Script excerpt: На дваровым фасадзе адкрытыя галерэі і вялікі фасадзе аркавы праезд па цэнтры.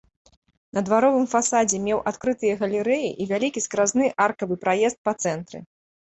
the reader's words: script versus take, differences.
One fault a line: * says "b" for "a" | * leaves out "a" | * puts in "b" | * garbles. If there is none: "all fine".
* puts in "меў"
* says "скразны" for "фасадзе"